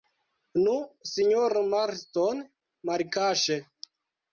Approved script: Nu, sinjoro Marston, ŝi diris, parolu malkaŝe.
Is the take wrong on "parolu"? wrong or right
wrong